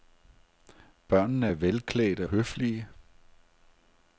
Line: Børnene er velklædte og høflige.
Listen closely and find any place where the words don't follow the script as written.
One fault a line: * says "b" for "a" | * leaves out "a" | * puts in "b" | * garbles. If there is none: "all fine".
* leaves out "og"